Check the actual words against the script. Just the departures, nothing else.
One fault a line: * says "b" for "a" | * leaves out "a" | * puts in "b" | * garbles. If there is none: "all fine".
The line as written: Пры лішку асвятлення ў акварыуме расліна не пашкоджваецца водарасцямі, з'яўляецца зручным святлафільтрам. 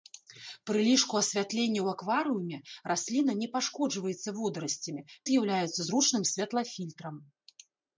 all fine